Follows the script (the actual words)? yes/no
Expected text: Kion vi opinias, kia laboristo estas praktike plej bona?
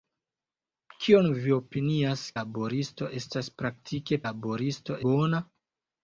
no